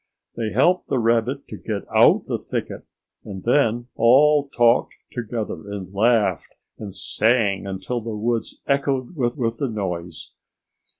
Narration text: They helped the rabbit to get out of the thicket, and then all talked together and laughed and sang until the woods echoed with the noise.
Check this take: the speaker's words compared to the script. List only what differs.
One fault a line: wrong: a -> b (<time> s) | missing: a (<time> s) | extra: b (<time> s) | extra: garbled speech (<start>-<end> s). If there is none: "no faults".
missing: of (2.2 s)
extra: with (9.4 s)